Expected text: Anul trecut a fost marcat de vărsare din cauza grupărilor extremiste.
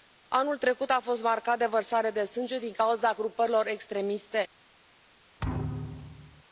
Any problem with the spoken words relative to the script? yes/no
yes